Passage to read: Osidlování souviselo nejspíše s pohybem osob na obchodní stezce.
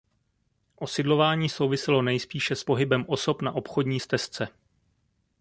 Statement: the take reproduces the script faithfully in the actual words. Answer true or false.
true